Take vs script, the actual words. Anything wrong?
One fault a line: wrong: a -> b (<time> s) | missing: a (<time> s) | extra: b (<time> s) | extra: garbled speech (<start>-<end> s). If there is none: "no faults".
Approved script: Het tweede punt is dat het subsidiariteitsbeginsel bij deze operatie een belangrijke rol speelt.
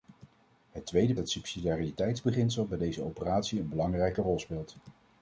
missing: punt is dat (1.1 s)